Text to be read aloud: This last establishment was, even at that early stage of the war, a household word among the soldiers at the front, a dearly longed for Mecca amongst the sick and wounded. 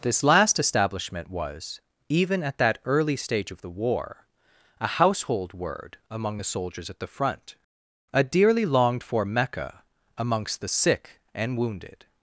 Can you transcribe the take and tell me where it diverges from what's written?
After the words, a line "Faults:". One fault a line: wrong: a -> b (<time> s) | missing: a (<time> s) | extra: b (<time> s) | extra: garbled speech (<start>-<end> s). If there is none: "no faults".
This last establishment was, even at that early stage of the war, a household word among the soldiers at the front, a dearly longed for Mecca amongst the sick and wounded.
Faults:
no faults